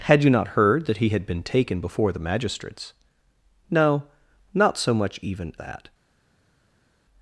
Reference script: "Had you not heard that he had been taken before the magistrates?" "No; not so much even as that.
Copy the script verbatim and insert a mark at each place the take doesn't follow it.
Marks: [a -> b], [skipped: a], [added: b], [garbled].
"Had you not heard that he had been taken before the magistrates?" "No; not so much even [skipped: as] that.